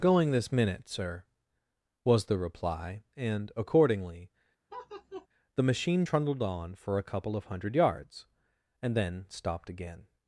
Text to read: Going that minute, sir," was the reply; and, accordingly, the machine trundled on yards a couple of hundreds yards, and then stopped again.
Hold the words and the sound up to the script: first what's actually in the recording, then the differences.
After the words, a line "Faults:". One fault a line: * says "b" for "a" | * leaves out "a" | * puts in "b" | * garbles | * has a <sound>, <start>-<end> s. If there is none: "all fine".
Going this minute, sir," was the reply; and, accordingly, the machine trundled on for a couple of hundred yards, and then stopped again.
Faults:
* says "this" for "that"
* has a laugh, 4.7-5.3 s
* says "for" for "yards"
* says "hundred" for "hundreds"